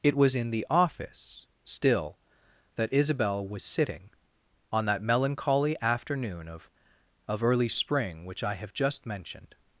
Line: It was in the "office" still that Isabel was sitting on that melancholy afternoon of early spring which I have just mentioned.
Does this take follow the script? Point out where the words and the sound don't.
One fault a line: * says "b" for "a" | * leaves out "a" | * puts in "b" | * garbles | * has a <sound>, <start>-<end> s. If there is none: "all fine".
* puts in "of"